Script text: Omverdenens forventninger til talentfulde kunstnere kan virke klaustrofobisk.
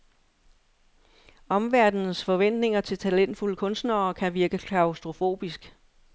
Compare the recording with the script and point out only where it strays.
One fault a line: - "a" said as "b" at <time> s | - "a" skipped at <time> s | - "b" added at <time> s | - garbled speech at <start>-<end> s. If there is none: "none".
none